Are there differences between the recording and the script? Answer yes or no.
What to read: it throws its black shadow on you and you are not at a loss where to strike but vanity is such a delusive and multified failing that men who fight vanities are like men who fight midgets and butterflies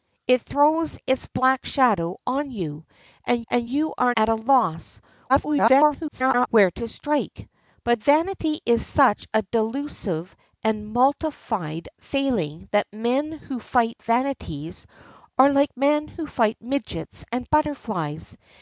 yes